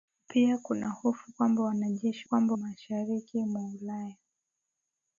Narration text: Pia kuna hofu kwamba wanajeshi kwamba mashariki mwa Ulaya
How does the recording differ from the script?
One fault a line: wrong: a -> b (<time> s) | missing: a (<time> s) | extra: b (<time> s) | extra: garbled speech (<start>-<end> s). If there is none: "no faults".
no faults